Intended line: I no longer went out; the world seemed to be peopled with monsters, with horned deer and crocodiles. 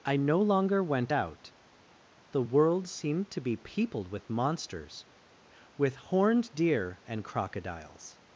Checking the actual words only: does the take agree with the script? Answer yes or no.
yes